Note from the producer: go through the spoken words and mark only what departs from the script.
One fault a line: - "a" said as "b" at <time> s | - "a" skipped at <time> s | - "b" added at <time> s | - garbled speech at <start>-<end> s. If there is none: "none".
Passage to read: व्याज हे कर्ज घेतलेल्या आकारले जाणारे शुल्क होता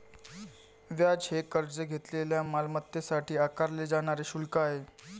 - "मालमत्तेसाठी" added at 2.4 s
- "होता" said as "आहे" at 4.6 s